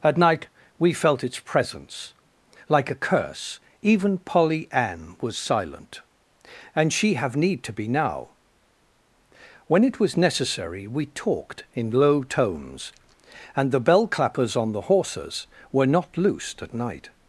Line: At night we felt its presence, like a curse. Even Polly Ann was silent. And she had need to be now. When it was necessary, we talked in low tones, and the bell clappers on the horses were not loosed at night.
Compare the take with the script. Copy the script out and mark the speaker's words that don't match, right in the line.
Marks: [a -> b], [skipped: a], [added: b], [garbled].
At night we felt its presence, like a curse. Even Polly Ann was silent. And she [had -> have] need to be now. When it was necessary, we talked in low tones, and the bell clappers on the horses were not loosed at night.